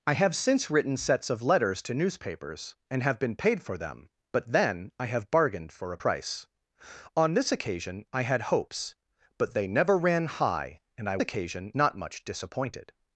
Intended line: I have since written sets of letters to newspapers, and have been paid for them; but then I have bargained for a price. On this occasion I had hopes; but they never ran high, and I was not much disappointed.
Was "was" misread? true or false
true